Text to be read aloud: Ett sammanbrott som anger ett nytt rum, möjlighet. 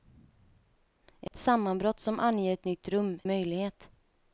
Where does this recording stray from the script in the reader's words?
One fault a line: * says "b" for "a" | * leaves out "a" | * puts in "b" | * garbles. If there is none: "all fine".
all fine